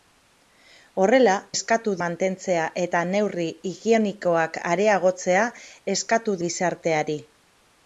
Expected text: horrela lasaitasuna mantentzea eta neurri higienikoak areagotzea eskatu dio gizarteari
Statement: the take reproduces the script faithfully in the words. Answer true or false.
false